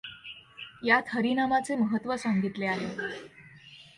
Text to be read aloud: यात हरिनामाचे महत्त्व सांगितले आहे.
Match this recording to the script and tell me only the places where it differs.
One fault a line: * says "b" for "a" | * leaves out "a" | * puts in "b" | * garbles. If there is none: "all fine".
all fine